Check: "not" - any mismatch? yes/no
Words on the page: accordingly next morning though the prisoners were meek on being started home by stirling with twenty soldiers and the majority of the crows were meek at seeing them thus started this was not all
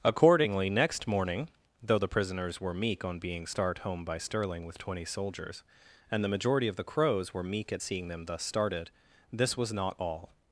no